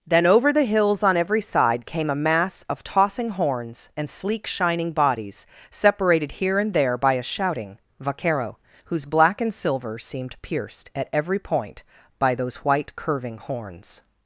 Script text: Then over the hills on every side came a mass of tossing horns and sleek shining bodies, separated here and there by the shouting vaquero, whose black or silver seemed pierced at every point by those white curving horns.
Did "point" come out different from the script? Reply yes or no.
no